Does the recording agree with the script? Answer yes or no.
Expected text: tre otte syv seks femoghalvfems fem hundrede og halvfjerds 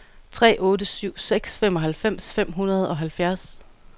yes